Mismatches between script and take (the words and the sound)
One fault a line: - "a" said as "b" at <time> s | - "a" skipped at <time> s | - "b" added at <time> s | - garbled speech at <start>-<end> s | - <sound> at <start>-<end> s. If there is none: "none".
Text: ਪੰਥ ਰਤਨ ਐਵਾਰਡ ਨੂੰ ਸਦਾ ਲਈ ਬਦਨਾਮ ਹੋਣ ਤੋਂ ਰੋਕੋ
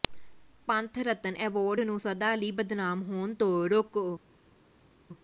none